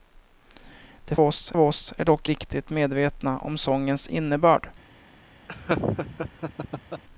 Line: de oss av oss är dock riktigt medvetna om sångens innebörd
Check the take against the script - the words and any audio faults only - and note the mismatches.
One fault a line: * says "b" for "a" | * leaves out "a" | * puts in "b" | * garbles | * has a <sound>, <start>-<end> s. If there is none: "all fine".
* has a laugh, 5.5-7.0 s